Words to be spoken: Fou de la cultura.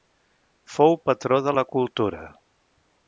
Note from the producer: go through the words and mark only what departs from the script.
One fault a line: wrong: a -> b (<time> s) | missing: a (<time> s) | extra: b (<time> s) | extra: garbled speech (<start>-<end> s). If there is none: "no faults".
extra: patró (1.1 s)